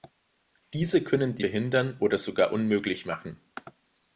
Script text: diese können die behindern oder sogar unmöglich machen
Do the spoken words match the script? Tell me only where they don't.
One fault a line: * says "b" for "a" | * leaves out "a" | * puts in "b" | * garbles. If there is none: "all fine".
all fine